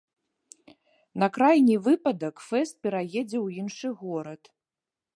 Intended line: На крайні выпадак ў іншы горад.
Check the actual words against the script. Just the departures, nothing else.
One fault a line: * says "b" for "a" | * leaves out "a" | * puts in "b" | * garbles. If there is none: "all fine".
* puts in "фэст пераедзе"